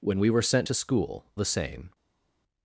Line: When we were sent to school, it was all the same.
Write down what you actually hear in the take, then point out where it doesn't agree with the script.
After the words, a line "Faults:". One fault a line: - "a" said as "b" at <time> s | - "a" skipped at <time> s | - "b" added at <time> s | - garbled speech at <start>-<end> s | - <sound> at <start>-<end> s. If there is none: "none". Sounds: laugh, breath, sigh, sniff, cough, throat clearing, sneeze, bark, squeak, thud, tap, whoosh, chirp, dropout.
When we were sent to school, the same.
Faults:
- "it was all" skipped at 1.3 s